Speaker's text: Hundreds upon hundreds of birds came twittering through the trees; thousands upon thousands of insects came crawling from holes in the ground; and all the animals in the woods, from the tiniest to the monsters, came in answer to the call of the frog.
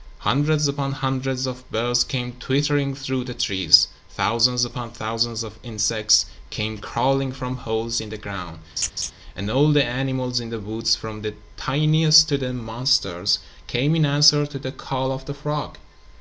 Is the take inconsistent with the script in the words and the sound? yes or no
yes